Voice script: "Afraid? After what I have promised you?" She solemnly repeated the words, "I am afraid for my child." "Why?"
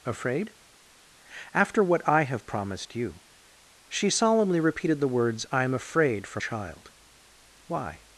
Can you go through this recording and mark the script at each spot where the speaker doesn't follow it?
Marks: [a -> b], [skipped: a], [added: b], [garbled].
"Afraid? After what I have promised you?" She solemnly repeated the words, "I am afraid for [skipped: my] child." "Why?"